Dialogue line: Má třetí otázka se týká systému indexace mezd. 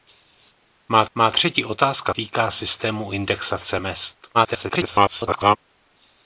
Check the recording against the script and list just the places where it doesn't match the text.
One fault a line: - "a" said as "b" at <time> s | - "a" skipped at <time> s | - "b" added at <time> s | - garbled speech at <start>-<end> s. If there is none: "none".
- "má" added at 1.2 s
- "se" skipped at 2.1 s
- garbled speech at 4.3-5.6 s